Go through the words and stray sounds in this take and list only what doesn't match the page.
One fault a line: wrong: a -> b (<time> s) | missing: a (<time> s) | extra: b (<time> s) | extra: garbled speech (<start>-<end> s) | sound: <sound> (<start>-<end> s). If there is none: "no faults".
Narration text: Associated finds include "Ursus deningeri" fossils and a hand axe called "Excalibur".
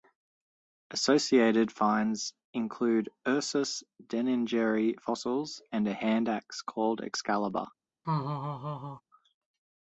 sound: laugh (8.0-9.0 s)